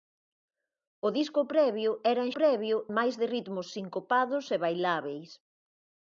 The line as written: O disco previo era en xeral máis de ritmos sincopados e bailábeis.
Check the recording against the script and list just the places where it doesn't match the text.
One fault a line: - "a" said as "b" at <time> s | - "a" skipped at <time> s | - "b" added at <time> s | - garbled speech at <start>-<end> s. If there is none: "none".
- "xeral" said as "previo" at 2.4 s